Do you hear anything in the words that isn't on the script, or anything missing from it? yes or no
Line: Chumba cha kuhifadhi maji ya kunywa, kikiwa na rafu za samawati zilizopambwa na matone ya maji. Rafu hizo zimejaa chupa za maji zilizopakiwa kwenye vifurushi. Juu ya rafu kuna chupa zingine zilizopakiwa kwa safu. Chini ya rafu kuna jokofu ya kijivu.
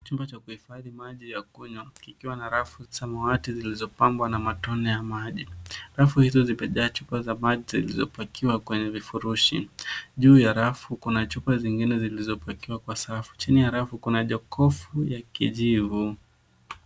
yes